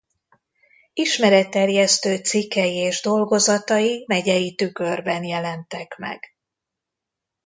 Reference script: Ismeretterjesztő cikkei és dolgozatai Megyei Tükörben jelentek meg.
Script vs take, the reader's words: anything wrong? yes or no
no